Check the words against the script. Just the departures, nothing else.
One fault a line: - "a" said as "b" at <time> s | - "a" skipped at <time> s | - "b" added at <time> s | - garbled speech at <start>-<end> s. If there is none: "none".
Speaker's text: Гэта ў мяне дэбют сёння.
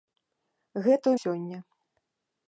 - "мяне дэбют" skipped at 1.1 s